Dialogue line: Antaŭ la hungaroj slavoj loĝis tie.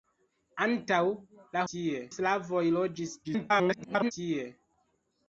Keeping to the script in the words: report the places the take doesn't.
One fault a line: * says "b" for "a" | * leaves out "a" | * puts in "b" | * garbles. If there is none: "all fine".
* says "tie" for "hungaroj"
* garbles